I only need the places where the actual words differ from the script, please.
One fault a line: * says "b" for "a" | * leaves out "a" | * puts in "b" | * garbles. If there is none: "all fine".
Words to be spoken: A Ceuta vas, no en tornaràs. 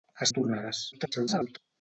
* leaves out "Ceuta vas no"
* garbles